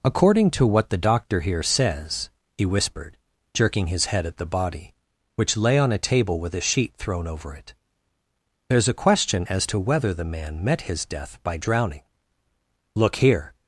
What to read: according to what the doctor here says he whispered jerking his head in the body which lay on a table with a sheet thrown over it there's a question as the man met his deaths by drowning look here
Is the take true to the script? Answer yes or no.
no